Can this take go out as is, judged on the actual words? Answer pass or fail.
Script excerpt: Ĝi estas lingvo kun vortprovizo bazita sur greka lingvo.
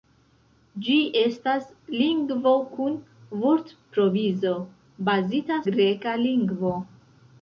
fail